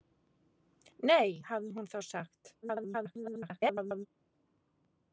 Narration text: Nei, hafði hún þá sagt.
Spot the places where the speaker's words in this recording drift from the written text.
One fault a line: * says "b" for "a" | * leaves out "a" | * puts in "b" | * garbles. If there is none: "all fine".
* garbles